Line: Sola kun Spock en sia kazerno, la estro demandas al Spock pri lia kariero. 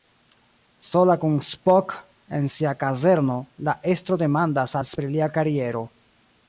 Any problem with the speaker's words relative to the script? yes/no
yes